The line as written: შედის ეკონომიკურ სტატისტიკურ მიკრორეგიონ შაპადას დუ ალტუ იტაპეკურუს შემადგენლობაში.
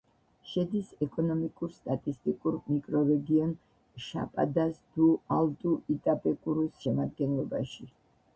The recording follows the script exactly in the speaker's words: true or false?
true